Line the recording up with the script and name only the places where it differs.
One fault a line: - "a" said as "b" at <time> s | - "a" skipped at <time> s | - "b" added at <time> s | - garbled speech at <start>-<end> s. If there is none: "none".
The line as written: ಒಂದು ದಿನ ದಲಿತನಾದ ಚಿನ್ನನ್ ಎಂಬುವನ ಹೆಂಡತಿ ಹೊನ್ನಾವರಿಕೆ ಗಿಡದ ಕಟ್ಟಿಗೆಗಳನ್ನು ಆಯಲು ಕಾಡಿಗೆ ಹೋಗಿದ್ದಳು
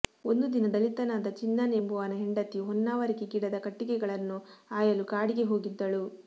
none